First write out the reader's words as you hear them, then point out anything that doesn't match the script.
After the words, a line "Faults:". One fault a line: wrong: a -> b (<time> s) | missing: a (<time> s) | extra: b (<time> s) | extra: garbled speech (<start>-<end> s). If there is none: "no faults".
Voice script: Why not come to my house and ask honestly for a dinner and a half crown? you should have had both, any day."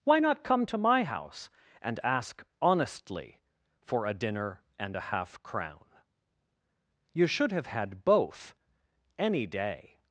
Why not come to my house and ask honestly for a dinner and a half crown? you should have had both, any day."
Faults:
no faults